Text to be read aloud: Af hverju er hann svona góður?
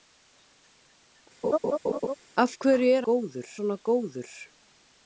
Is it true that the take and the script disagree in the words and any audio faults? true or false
true